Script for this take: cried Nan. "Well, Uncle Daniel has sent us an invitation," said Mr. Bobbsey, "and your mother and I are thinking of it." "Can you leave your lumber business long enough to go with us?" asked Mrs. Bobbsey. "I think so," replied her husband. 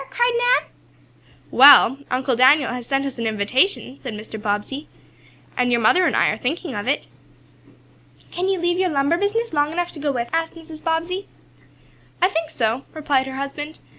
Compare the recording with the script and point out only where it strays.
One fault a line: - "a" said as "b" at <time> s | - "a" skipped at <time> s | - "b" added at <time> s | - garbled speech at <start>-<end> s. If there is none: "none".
- "us" skipped at 10.3 s